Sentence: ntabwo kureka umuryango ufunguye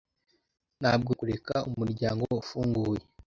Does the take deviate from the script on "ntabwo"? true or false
false